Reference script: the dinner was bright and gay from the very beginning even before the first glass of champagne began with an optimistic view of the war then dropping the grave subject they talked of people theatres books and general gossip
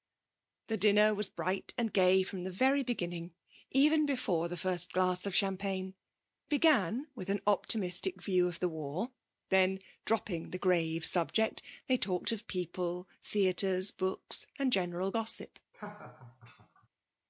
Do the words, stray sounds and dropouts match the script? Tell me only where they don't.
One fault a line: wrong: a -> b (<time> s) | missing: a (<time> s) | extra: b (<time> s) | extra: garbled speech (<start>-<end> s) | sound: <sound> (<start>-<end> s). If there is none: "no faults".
sound: laugh (15.7-16.9 s)